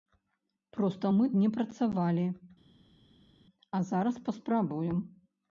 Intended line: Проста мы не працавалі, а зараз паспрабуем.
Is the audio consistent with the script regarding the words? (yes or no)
yes